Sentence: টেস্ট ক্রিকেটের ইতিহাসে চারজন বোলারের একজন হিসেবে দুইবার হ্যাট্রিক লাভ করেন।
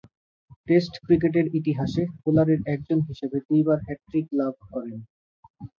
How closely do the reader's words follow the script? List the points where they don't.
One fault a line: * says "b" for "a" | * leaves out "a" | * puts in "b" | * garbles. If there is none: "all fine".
* leaves out "চারজন"